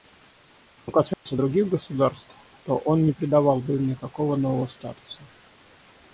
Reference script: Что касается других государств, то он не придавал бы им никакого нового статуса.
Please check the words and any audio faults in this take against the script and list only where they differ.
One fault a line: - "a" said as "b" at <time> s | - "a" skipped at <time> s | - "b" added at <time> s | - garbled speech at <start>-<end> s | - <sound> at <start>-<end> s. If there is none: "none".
- dropout at 1.1-1.3 s